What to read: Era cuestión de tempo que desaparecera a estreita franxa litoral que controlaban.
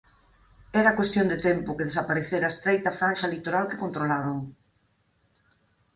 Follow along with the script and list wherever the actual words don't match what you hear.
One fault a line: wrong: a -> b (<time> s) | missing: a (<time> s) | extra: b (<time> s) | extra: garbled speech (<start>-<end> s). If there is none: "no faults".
no faults